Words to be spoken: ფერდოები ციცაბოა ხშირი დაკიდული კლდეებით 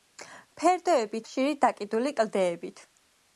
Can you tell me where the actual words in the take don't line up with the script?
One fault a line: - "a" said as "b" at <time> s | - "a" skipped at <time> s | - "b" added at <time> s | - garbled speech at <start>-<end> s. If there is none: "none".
- "ციცაბოა" skipped at 1.2 s